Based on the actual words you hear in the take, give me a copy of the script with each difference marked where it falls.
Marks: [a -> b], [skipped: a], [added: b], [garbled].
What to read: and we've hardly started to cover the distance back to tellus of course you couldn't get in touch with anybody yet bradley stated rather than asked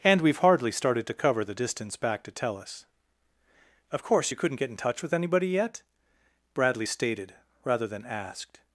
and we've hardly started to cover the distance back to tellus of course you couldn't get in touch with anybody yet bradley stated rather than asked